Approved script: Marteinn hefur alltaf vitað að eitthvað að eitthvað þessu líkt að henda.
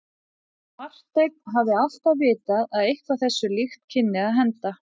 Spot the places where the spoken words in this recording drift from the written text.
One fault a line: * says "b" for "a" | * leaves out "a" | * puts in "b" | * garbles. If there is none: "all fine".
* says "hafði" for "hefur"
* leaves out "að eitthvað"
* puts in "kynni"